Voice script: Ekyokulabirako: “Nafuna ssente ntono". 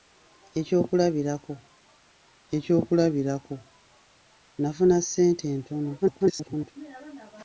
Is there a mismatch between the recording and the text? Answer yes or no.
yes